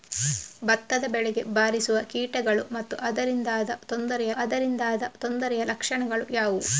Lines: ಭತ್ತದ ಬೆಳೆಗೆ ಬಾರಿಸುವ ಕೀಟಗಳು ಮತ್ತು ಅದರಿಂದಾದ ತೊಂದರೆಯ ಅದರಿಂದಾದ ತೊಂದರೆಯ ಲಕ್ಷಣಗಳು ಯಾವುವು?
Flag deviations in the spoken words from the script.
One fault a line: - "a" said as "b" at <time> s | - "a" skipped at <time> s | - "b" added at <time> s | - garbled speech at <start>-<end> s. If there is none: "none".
none